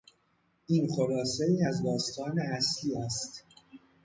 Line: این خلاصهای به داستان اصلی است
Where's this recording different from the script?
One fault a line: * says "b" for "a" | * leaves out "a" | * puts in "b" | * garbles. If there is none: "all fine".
* says "از" for "به"